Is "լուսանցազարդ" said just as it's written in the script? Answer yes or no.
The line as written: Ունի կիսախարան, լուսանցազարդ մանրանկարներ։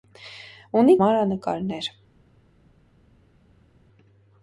no